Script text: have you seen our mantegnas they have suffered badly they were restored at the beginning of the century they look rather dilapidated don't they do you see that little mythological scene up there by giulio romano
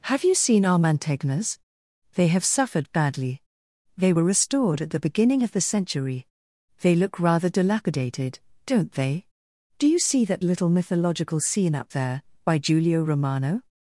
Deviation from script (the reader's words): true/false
false